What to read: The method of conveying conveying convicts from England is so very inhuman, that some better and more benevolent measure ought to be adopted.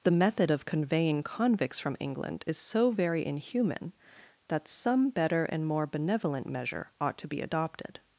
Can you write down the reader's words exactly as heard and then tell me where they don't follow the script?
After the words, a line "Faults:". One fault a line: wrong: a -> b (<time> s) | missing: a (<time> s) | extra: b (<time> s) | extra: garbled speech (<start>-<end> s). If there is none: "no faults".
The method of conveying convicts from England is so very inhuman, that some better and more benevolent measure ought to be adopted.
Faults:
missing: conveying (1.2 s)